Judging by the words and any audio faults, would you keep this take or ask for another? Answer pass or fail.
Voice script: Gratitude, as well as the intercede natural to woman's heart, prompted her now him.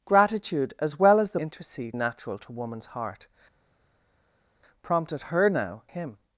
pass